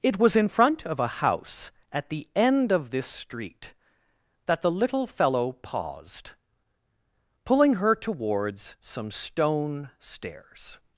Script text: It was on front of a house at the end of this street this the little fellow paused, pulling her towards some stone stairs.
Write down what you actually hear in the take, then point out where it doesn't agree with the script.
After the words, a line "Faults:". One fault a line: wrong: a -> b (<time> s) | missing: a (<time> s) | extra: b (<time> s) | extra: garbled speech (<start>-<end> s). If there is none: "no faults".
It was in front of a house at the end of this street that the little fellow paused, pulling her towards some stone stairs.
Faults:
wrong: on -> in (0.3 s)
wrong: this -> that (4.4 s)